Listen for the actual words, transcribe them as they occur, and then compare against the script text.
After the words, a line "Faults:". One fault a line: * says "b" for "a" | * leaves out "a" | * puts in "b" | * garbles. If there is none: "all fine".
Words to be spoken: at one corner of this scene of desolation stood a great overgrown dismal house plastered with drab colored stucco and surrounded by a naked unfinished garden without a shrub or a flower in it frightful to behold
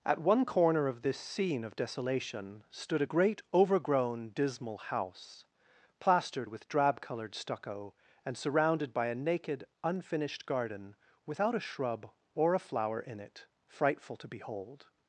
at one corner of this scene of desolation stood a great overgrown dismal house plastered with drab colored stucco and surrounded by a naked unfinished garden without a shrub or a flower in it frightful to behold
Faults:
all fine